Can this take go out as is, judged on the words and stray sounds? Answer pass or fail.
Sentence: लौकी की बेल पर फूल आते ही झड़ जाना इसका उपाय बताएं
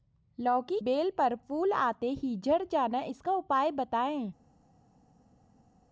fail